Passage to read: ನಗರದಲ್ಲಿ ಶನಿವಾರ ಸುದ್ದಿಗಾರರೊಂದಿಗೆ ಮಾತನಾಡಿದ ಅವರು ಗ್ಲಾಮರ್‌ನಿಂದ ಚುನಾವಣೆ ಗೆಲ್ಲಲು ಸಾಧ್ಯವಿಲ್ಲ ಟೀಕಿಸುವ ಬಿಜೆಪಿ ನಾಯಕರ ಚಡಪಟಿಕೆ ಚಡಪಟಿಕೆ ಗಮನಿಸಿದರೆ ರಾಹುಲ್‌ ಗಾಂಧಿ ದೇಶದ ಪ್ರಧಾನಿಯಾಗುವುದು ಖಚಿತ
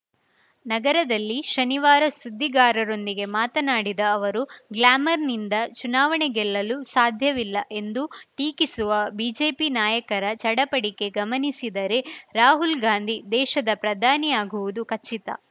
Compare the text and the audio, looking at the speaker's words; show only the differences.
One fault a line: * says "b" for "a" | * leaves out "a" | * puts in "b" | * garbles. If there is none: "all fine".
* puts in "ಎಂದು"
* leaves out "ಚಡಪಟಿಕೆ"